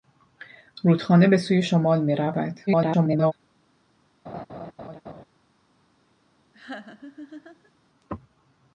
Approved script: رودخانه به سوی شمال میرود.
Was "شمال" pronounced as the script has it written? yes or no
yes